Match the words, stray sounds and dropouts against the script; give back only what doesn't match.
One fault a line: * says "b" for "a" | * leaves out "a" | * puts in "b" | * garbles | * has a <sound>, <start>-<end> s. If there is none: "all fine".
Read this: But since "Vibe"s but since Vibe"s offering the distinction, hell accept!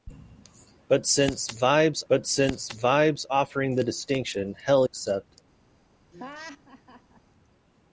* has a laugh, 6.1-7.2 s